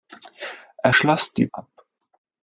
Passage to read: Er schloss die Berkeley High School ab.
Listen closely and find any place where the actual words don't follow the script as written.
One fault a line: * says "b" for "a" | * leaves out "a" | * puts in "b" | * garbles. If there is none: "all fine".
* leaves out "Berkeley High School"